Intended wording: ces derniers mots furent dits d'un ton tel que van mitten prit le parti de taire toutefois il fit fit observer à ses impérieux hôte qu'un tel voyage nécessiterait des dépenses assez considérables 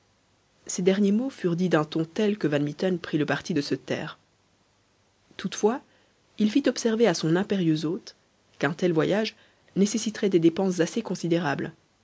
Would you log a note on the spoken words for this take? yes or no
yes